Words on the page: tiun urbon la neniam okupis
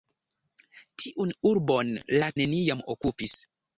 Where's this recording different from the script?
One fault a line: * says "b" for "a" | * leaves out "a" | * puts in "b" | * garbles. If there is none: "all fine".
all fine